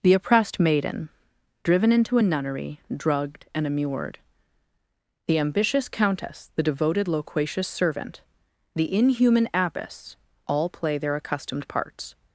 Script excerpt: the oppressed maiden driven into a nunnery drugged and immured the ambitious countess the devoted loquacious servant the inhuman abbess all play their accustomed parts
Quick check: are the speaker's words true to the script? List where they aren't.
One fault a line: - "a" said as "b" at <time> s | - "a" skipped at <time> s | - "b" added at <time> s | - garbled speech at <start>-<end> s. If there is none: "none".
none